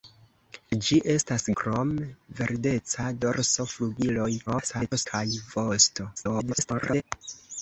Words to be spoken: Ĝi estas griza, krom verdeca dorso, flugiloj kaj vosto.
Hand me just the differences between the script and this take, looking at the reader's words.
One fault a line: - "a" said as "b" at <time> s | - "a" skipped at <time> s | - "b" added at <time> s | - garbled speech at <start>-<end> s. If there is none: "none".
- "griza" skipped at 1.4 s
- garbled speech at 4.5-5.1 s
- garbled speech at 6.2-7.0 s